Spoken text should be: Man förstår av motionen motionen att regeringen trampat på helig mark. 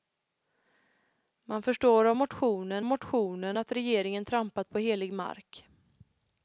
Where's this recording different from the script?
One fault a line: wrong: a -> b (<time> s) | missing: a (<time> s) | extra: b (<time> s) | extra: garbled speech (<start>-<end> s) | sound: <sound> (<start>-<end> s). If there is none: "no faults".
no faults